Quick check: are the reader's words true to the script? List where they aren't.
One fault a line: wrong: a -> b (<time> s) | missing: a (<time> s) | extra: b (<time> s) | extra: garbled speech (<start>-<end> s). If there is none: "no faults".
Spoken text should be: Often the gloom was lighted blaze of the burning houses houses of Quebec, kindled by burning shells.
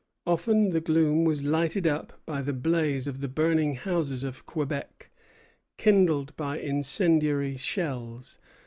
extra: up by the (1.9 s)
missing: houses (4.2 s)
wrong: burning -> incendiary (6.6 s)